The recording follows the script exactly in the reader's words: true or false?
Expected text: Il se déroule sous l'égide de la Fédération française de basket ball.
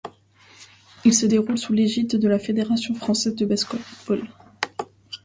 true